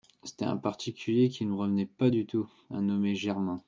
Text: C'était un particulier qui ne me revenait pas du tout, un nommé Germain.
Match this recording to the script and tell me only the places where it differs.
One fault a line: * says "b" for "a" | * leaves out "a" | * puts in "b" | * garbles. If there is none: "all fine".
all fine